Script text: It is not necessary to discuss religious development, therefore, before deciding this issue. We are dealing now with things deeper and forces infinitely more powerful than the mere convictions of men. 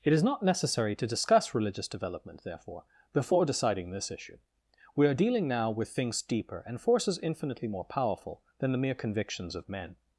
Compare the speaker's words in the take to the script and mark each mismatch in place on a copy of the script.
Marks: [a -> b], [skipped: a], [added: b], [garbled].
It is not necessary to discuss religious development, therefore, before deciding this issue. We are dealing now with things deeper and forces infinitely more powerful than the mere convictions of men.